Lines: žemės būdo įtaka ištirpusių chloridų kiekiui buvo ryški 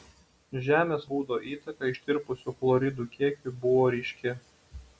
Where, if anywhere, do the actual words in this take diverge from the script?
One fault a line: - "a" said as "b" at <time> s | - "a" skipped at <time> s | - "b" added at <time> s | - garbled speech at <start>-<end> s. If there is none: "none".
none